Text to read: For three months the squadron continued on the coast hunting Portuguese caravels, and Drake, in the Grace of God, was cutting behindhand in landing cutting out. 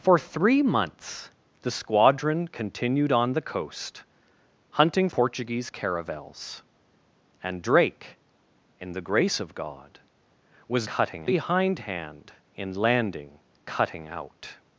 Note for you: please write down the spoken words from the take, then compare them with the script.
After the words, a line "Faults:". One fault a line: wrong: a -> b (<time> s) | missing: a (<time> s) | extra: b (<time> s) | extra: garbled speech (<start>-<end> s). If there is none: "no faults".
For three months the squadron continued on the coast hunting Portuguese caravels, and Drake, in the Grace of God, was cutting behindhand in landing cutting out.
Faults:
no faults